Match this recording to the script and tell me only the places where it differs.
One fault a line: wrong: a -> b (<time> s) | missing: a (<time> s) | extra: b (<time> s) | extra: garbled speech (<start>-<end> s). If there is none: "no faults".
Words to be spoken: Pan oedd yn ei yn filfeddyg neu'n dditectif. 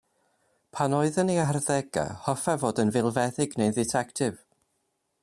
extra: harddegau hoffai fod (1.5 s)